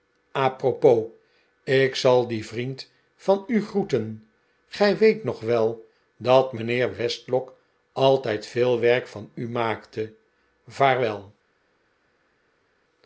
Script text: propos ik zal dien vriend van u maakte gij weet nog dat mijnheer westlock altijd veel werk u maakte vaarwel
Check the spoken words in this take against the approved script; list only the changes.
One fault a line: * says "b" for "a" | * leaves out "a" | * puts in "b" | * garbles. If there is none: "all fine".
* says "groeten" for "maakte"
* puts in "wel"
* puts in "van"